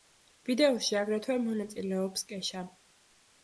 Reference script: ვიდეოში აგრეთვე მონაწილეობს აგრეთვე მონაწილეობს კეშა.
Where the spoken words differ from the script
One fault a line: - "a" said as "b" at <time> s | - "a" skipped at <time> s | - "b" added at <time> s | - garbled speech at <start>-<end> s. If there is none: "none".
- "აგრეთვე მონაწილეობს" skipped at 2.3 s